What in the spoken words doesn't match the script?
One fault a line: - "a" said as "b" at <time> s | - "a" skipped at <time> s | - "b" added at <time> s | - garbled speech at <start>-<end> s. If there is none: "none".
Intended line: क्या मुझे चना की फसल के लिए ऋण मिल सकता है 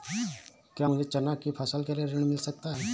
none